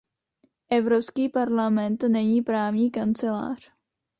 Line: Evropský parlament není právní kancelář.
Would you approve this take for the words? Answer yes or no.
yes